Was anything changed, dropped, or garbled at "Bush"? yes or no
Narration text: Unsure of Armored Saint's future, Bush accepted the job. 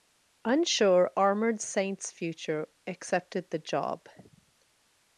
yes